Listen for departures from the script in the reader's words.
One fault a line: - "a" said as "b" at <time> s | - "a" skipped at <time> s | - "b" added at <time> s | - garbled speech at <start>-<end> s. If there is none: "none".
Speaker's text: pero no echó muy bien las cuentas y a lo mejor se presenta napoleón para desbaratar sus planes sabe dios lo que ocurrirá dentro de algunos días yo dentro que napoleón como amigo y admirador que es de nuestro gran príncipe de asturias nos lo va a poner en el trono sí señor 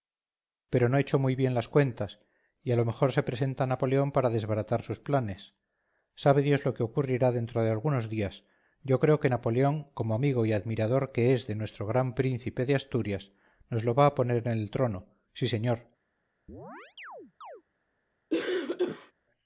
- "dentro" said as "creo" at 9.0 s